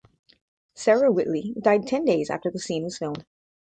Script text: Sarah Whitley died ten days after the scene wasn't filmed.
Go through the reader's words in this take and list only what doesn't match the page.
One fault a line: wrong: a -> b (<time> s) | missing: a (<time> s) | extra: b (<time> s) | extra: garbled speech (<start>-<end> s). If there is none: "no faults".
wrong: wasn't -> was (2.8 s)